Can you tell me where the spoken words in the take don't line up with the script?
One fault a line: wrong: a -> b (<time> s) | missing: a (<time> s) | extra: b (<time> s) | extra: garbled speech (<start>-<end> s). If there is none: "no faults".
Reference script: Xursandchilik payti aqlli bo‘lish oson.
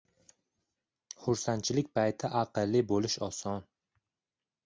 no faults